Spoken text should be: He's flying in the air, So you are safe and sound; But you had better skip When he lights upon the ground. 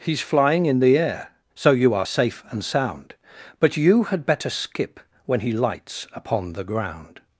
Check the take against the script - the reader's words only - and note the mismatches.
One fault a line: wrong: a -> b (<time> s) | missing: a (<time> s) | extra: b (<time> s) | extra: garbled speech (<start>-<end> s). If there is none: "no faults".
no faults